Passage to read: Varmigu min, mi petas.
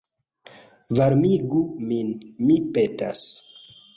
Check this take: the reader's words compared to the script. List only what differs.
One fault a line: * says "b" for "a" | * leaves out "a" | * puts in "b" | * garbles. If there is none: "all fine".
all fine